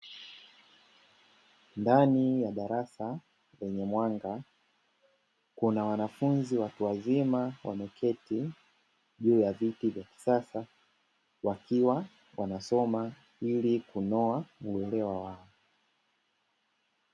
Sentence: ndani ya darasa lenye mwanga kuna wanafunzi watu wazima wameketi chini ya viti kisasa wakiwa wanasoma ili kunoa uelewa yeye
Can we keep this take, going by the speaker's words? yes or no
no